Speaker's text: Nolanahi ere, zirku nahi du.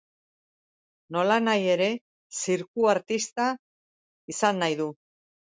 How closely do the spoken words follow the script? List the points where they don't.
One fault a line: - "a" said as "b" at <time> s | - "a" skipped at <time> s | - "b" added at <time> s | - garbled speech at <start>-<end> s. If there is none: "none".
- "artista izan" added at 3.0 s